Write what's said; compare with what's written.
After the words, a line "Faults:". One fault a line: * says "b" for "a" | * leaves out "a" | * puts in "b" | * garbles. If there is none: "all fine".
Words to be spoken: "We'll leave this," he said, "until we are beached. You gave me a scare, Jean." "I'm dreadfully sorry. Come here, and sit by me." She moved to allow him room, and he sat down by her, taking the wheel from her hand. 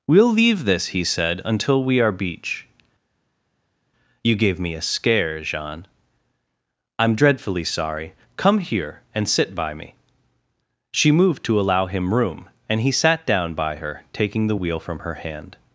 "We'll leave this," he said, "until we are beach. You gave me a scare, Jean." "I'm dreadfully sorry. Come here, and sit by me." She moved to allow him room, and he sat down by her, taking the wheel from her hand.
Faults:
* says "beach" for "beached"